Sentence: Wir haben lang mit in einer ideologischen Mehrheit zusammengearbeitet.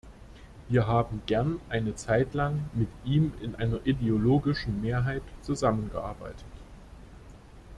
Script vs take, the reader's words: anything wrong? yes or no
yes